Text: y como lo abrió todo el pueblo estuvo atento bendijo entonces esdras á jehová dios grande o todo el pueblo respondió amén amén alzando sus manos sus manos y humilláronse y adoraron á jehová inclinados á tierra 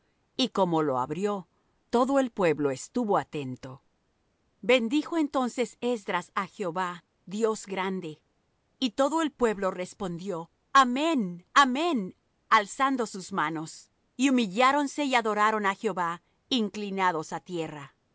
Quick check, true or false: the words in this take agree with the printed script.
false